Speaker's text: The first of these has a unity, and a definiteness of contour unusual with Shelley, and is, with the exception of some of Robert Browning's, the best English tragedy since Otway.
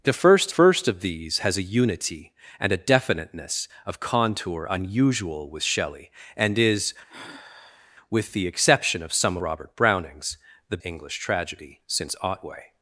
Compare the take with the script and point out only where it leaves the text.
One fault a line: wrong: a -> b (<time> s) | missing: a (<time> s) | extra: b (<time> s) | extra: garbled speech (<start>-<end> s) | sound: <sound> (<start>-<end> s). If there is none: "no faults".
extra: first (0.5 s)
sound: sigh (7.1-7.9 s)
missing: of (9.4 s)
missing: best (10.8 s)